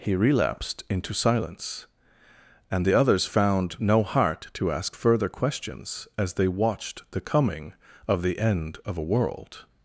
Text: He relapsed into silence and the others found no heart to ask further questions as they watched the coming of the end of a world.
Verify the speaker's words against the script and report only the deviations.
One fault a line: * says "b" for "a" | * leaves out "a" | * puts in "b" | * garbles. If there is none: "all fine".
all fine